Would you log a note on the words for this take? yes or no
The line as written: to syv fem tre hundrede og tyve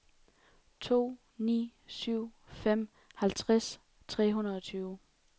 yes